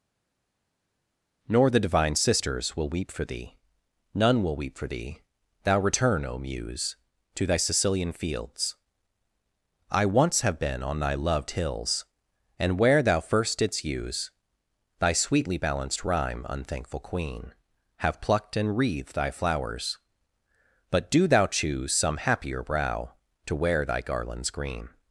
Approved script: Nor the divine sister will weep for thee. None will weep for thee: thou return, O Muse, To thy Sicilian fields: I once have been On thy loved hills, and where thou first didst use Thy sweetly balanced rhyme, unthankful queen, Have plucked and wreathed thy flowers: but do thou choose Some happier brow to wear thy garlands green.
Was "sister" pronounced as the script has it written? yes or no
no